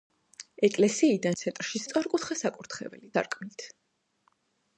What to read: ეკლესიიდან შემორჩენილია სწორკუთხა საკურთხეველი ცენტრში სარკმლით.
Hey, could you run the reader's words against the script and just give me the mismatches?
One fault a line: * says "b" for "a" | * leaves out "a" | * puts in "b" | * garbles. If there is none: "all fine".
* says "ცენტრში" for "შემორჩენილია"
* leaves out "ცენტრში"